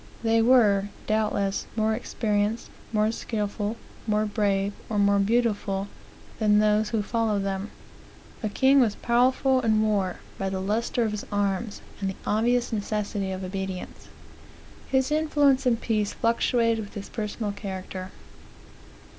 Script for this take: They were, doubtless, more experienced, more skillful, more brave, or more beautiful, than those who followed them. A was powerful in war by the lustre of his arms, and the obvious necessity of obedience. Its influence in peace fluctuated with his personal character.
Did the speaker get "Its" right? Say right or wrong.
wrong